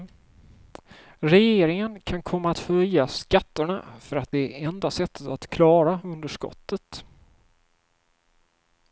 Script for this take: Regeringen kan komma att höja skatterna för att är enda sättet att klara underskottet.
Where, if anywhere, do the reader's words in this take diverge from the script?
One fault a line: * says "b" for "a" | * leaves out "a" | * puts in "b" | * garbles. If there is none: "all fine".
* puts in "det"